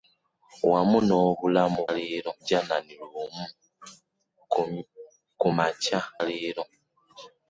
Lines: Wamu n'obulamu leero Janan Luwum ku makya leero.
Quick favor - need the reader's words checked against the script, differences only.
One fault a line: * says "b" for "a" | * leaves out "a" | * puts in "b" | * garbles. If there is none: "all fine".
all fine